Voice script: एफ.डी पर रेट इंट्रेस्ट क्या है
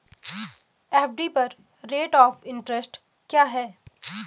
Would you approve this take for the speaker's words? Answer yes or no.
no